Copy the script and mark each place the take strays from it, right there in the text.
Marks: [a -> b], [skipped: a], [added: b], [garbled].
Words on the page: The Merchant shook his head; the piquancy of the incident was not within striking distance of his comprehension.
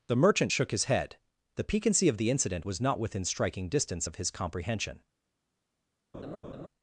The Merchant shook his head; the piquancy of the incident was not within striking distance of his comprehension.